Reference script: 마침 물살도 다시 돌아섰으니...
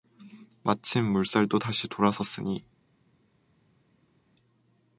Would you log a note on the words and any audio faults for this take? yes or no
no